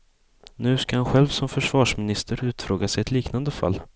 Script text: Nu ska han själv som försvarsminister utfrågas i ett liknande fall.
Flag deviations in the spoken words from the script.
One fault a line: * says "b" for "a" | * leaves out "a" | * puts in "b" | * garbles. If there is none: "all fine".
all fine